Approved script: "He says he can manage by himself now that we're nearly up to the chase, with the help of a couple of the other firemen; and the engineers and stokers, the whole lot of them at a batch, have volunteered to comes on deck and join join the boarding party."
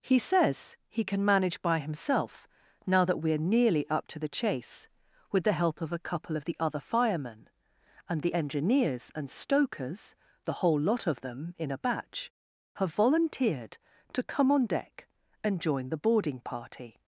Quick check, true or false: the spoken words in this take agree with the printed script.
false